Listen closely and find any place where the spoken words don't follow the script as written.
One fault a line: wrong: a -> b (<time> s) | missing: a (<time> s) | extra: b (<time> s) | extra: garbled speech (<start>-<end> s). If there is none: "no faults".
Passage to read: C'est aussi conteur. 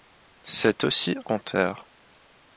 no faults